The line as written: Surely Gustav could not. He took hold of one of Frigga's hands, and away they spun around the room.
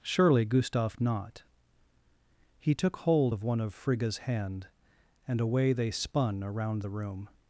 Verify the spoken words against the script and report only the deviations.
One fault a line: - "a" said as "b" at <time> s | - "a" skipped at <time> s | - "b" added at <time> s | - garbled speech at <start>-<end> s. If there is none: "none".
- "could" skipped at 1.0 s
- "hands" said as "hand" at 4.2 s